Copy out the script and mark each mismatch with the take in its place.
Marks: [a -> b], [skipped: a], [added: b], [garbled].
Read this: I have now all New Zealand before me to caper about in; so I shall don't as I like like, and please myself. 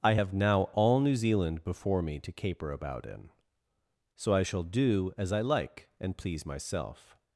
I have now all New Zealand before me to caper about in; so I shall [don't -> do] as I like [skipped: like,] and please myself.